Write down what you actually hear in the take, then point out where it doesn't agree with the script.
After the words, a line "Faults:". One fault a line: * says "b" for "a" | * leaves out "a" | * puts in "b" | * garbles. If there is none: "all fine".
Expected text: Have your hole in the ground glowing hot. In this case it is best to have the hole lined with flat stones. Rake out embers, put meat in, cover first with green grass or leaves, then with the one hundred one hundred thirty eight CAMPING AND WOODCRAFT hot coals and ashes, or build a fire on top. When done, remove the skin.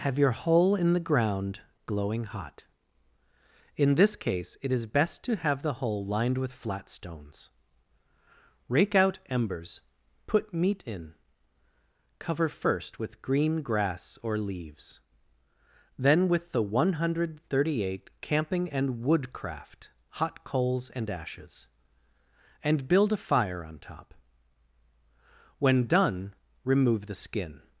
Have your hole in the ground glowing hot. In this case it is best to have the hole lined with flat stones. Rake out embers, put meat in, cover first with green grass or leaves, then with the one hundred thirty eight CAMPING AND WOODCRAFT hot coals and ashes, and build a fire on top. When done, remove the skin.
Faults:
* leaves out "one hundred"
* says "and" for "or"